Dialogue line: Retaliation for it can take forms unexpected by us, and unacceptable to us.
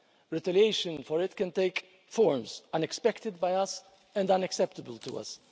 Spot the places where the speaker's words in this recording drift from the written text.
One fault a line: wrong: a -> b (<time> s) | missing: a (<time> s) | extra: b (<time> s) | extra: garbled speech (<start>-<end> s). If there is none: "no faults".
no faults